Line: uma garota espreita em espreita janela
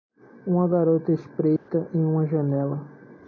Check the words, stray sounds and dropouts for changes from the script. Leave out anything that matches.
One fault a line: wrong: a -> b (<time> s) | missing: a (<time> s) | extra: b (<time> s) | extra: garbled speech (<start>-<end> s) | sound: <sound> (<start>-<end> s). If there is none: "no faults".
sound: dropout (1.6-1.7 s)
wrong: espreita -> uma (2.0 s)